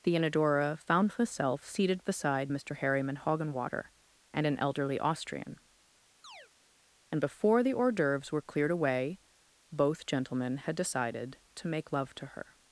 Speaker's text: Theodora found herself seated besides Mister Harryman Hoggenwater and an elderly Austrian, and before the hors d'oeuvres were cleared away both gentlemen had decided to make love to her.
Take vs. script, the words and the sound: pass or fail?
fail